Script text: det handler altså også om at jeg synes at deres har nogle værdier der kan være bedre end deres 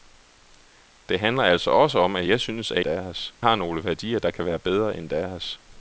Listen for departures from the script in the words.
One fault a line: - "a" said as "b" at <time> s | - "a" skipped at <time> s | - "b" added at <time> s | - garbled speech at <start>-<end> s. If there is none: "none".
none